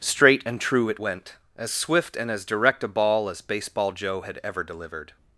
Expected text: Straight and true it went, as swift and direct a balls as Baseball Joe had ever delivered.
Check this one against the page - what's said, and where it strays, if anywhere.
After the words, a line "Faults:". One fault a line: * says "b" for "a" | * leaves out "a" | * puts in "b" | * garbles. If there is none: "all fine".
Straight and true it went, as swift and as direct a ball as Baseball Joe had ever delivered.
Faults:
* puts in "as"
* says "ball" for "balls"